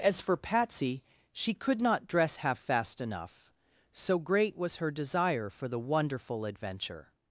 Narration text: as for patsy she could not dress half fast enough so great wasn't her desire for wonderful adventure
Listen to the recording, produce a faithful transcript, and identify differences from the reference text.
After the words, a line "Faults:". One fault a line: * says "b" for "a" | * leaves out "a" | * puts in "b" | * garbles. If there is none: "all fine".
as for patsy she could not dress half fast enough so great was her desire for the wonderful adventure
Faults:
* says "was" for "wasn't"
* puts in "the"